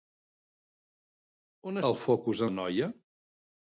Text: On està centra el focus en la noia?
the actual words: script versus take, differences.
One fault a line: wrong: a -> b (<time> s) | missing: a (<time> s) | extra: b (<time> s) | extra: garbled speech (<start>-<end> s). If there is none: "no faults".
missing: està centra (1.8 s)
missing: en (2.5 s)